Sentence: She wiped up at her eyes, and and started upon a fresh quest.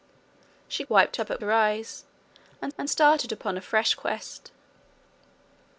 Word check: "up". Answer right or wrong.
right